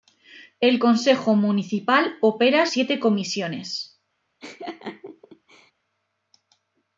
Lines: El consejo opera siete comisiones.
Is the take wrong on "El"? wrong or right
right